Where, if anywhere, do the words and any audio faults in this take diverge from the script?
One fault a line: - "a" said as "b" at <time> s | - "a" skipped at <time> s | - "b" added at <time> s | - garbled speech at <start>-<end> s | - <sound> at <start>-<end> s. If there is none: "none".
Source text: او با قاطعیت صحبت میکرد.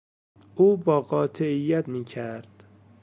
- "صحبت" skipped at 1.9 s